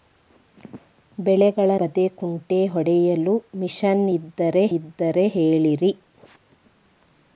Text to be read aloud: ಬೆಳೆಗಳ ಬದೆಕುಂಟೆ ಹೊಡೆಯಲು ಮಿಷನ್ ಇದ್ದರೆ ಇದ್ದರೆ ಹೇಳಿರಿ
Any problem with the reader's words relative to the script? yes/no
no